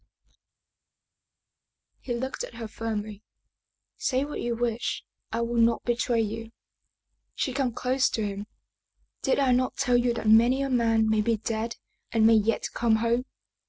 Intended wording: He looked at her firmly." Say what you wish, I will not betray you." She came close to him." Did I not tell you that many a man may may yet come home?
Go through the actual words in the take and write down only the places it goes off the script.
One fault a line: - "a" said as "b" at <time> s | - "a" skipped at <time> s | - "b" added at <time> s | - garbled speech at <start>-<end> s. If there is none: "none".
- "be dead and" added at 11.2 s